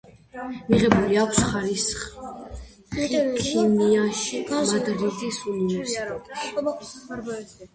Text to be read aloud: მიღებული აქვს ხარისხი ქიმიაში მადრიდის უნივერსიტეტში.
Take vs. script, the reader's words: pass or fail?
pass